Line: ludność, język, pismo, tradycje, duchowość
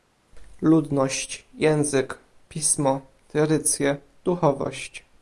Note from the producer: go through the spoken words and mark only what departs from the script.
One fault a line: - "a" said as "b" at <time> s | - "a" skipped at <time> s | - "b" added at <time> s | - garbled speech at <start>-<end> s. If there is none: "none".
none